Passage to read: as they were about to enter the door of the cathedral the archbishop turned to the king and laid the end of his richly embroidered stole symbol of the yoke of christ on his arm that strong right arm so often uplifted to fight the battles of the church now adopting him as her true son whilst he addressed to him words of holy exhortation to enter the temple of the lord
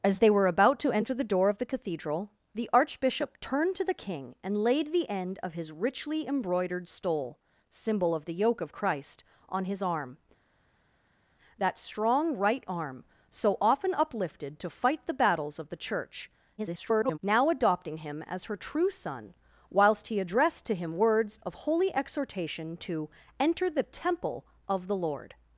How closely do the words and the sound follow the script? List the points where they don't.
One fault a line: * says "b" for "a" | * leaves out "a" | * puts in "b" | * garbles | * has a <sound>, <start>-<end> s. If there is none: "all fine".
* garbles